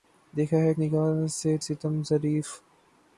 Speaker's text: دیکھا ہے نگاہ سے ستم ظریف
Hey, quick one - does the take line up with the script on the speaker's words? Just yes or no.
yes